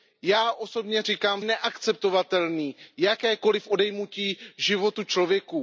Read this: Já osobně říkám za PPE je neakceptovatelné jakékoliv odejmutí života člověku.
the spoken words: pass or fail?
fail